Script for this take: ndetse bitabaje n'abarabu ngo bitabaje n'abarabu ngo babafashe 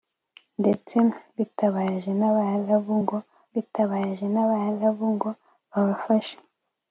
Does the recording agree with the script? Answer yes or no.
yes